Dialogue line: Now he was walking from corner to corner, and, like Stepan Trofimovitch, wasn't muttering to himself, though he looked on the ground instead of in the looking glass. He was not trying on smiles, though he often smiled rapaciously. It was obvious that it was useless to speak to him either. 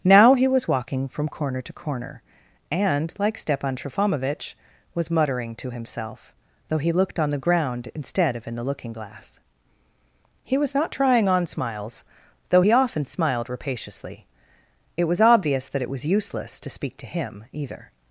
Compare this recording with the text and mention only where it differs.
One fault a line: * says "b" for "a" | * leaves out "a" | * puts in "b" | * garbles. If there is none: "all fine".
* says "was" for "wasn't"